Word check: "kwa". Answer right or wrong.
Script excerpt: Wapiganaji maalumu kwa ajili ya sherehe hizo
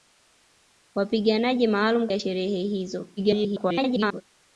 wrong